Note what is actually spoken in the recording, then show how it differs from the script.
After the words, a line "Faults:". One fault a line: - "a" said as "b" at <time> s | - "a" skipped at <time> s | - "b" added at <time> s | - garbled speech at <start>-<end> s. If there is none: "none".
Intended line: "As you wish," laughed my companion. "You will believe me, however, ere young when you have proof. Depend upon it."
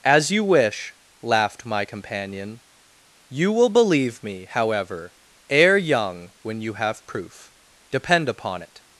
"As you wish," laughed my companion. "You will believe me, however, ere young when you have proof. Depend upon it."
Faults:
none